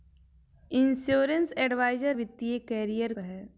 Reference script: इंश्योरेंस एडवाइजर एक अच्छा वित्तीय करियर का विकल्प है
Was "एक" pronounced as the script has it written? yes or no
no